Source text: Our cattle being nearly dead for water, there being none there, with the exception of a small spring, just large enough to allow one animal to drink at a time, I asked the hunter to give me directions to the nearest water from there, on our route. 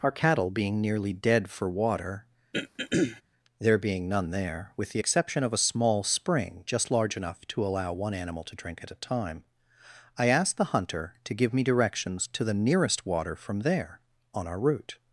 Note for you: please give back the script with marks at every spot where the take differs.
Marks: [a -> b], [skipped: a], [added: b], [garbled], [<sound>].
Our cattle being nearly dead for water, [throat clearing] there being none there, with the exception of a small spring, just large enough to allow one animal to drink at a time, I asked the hunter to give me directions to the nearest water from there, on our route.